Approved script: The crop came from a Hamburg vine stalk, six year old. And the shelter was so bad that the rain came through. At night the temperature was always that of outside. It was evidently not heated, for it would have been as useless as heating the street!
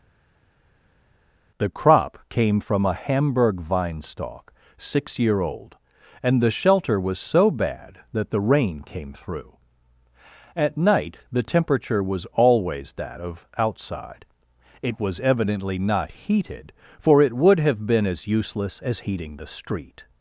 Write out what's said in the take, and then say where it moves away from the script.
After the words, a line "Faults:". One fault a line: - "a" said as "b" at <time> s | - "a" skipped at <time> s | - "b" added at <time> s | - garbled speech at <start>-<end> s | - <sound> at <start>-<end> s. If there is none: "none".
The crop came from a Hamburg vine stalk, six year old. And the shelter was so bad that the rain came through. At night the temperature was always that of outside. It was evidently not heated, for it would have been as useless as heating the street!
Faults:
none